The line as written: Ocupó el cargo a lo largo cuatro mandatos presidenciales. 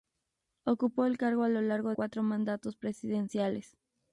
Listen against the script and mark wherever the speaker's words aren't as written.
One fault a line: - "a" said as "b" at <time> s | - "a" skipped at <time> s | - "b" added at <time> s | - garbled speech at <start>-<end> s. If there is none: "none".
none